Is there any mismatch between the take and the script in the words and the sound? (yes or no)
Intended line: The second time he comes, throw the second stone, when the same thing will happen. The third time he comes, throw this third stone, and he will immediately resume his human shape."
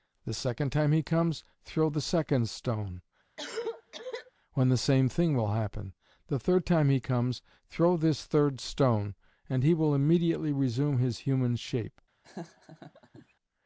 yes